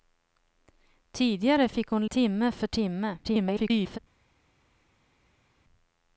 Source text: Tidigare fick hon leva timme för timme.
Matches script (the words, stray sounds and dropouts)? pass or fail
fail